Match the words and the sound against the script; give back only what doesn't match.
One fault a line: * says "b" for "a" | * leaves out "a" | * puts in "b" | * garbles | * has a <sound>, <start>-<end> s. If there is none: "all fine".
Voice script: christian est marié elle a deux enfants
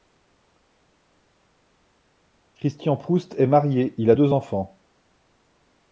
* puts in "proust"
* says "il" for "elle"